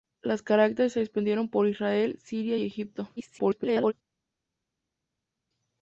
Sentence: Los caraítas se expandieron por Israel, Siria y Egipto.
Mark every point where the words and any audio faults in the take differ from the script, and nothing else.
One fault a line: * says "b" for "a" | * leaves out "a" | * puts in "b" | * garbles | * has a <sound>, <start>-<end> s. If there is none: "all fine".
* garbles